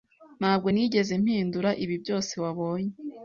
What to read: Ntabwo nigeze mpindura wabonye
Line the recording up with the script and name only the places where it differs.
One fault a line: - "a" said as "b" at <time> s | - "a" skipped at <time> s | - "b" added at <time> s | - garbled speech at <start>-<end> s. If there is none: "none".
- "ibi byose" added at 1.8 s